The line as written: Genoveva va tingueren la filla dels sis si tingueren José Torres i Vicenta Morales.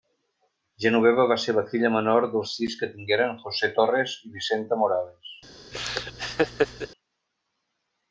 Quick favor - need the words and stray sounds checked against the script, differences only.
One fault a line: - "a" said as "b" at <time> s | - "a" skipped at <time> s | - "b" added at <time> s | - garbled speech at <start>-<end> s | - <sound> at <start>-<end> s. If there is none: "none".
- "tingueren" said as "ser" at 1.4 s
- "menor" added at 2.0 s
- "si" said as "que" at 2.8 s
- laugh at 5.7-6.9 s